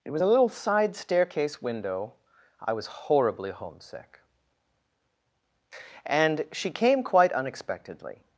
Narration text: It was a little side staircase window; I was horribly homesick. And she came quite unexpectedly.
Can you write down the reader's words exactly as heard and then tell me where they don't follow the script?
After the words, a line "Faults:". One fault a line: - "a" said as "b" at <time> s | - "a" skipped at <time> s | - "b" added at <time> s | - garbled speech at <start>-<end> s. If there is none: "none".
It was a little side staircase window; I was horribly homesick. And she came quite unexpectedly.
Faults:
none